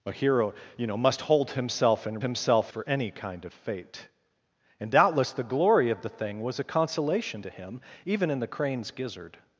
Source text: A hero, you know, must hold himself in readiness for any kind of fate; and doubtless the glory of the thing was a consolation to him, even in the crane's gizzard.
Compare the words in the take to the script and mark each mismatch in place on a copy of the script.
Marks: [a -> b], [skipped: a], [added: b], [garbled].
A hero, you know, must hold himself in [readiness -> himself] for any kind of fate; and doubtless the glory of the thing was a consolation to him, even in the crane's gizzard.